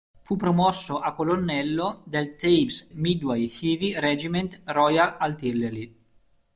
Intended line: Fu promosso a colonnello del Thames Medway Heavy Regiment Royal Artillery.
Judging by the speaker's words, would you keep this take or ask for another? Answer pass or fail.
pass